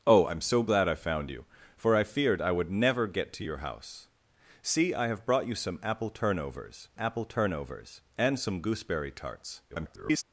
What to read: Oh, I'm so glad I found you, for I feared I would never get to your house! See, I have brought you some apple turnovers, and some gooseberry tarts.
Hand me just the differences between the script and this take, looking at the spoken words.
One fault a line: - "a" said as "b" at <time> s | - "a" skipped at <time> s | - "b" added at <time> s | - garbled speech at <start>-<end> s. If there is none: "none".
- "apple turnovers" added at 7.0 s
- garbled speech at 9.7-10.2 s